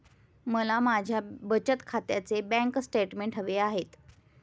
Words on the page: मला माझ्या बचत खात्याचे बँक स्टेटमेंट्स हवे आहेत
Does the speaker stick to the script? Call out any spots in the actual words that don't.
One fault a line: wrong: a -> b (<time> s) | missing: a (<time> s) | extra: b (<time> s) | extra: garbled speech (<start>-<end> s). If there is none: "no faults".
no faults